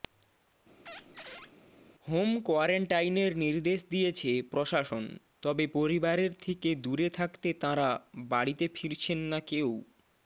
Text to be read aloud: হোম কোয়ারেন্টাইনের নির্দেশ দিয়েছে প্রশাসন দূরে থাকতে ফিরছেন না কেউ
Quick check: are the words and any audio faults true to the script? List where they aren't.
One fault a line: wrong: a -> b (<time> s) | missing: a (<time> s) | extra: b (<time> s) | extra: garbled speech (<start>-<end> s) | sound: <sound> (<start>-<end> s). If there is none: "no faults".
sound: squeak (0.9-1.5 s)
extra: তবে পরিবারের থেকে (5.4 s)
extra: তাঁরা বাড়িতে (7.6 s)